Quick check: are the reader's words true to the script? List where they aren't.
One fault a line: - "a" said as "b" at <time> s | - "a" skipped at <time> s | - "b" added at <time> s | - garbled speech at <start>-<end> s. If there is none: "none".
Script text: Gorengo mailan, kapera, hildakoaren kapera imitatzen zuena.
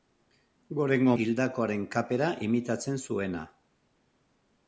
- "mailan kapera" skipped at 1.1 s